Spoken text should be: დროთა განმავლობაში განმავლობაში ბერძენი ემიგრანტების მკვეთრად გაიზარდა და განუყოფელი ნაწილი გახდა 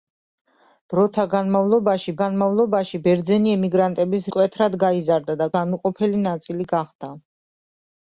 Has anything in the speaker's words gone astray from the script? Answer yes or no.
no